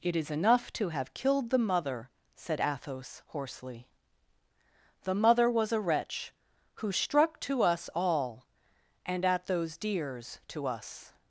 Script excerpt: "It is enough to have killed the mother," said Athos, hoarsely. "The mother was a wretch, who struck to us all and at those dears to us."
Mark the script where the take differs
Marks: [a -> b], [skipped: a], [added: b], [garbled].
"It is enough to have killed the mother," said Athos, hoarsely. "The mother was a wretch, who struck to us all and at those dears to us."